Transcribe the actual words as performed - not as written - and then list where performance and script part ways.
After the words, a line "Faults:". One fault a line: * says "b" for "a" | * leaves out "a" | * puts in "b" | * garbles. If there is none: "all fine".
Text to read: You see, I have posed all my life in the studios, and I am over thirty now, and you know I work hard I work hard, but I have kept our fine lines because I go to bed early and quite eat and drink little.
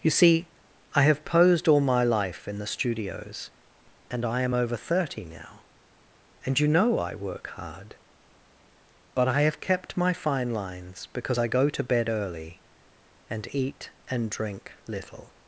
You see, I have posed all my life in the studios, and I am over thirty now, and you know I work hard, but I have kept my fine lines because I go to bed early and eat and drink little.
Faults:
* leaves out "I work hard"
* says "my" for "our"
* leaves out "quite"